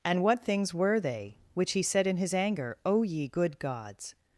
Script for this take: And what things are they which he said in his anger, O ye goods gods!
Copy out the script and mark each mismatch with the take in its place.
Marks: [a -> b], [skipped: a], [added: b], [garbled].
And what things [are -> were] they which he said in his anger, O ye [goods -> good] gods!